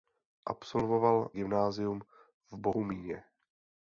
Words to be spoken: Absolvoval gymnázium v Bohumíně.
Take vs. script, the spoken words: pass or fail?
pass